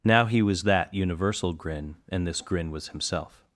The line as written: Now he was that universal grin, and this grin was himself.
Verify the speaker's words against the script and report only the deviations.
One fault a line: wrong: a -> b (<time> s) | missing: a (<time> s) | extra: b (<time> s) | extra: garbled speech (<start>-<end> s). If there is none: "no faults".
no faults